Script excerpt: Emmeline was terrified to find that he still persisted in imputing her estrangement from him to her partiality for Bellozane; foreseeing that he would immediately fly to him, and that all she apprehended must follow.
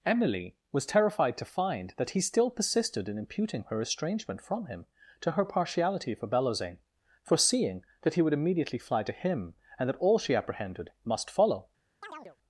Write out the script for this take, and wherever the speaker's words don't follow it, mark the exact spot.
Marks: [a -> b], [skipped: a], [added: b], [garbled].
[Emmeline -> Emily] was terrified to find that he still persisted in imputing her estrangement from him to her partiality for Bellozane; foreseeing that he would immediately fly to him, and that all she apprehended must follow.